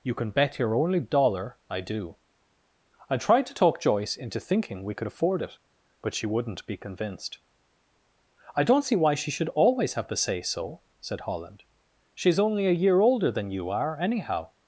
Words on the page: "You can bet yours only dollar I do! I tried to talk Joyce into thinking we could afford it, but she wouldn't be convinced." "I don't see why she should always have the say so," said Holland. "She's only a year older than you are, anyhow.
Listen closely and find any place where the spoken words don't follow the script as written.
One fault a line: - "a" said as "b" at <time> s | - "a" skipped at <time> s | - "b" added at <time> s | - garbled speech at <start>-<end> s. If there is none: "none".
- "yours" said as "your" at 0.6 s